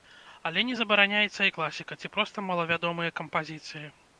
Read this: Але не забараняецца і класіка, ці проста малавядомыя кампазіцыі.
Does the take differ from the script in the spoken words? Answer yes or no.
no